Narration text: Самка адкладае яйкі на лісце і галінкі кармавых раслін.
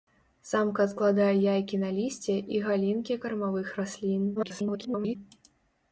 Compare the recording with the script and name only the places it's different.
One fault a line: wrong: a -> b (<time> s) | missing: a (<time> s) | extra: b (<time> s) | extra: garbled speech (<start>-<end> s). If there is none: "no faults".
extra: garbled speech (4.4-5.2 s)